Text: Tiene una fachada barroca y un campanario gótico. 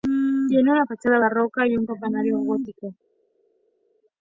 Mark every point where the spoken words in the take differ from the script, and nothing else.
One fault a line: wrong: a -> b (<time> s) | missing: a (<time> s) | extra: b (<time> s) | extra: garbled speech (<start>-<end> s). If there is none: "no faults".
no faults